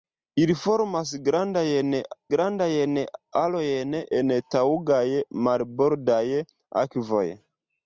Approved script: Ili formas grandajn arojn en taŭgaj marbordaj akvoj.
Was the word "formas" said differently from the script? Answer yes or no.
no